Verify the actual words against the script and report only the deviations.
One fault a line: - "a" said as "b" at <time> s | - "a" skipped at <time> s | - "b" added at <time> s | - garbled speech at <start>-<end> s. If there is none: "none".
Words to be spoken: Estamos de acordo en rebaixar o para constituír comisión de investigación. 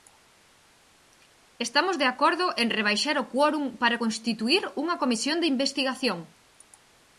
- "quórum" added at 3.3 s
- "unha" added at 4.8 s